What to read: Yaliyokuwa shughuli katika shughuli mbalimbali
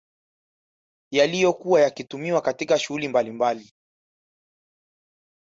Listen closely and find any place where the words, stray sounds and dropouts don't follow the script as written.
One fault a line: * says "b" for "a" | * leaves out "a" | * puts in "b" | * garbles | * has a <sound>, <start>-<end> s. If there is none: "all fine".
* says "yakitumiwa" for "shughuli"